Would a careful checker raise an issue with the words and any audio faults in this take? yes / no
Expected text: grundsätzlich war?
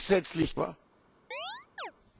yes